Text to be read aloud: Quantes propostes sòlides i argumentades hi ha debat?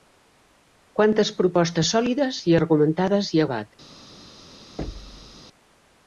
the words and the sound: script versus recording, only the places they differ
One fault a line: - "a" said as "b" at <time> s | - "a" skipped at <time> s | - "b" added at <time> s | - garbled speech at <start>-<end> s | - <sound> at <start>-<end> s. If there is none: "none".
- thud at 4.8-5.4 s